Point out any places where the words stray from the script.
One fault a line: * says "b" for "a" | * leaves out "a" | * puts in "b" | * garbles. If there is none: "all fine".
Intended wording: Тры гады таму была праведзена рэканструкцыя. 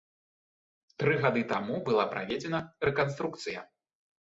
all fine